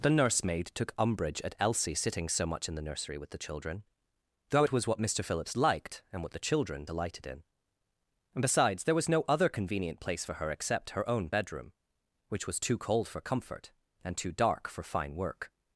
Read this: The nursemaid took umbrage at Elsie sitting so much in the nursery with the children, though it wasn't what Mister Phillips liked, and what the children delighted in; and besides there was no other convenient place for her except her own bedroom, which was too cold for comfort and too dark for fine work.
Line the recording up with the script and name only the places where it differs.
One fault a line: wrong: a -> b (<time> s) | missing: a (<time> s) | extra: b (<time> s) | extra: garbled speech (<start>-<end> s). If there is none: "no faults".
wrong: wasn't -> was (4.7 s)